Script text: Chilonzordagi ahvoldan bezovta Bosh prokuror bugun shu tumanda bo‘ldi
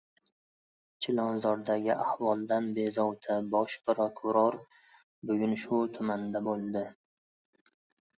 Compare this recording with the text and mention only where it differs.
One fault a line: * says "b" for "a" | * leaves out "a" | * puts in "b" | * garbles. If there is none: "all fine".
all fine